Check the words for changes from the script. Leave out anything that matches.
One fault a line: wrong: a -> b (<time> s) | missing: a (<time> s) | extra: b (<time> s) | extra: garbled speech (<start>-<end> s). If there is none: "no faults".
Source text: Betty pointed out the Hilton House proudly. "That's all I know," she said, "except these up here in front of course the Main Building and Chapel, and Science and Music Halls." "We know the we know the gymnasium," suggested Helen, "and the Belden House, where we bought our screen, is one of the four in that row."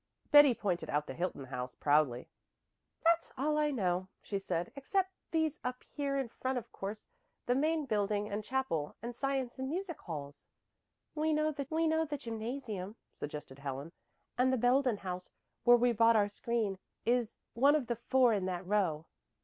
no faults